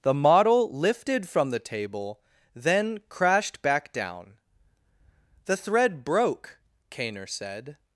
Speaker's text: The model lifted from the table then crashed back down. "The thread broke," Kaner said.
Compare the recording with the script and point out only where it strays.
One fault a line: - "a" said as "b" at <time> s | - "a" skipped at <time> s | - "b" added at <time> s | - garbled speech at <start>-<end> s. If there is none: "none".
none